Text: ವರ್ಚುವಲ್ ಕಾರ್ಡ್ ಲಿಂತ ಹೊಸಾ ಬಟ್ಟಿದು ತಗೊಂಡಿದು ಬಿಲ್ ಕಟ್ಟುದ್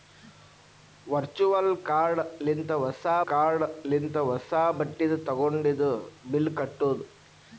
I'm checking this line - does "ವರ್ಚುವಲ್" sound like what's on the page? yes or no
yes